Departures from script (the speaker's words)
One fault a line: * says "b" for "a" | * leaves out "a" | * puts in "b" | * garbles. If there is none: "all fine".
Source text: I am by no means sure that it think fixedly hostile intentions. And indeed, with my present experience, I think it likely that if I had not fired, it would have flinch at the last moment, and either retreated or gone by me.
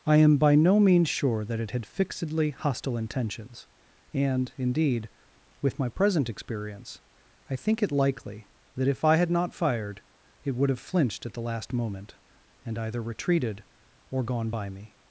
* says "had" for "think"
* says "flinched" for "flinch"